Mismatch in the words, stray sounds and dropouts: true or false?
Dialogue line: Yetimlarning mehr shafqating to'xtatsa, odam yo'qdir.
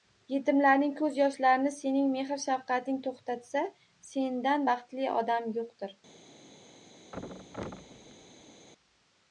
true